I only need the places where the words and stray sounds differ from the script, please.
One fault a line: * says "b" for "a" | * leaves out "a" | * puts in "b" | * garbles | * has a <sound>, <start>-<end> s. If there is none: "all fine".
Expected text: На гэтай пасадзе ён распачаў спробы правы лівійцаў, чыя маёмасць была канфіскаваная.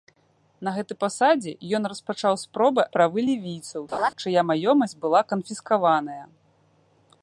* has a laugh, 3.9-4.1 s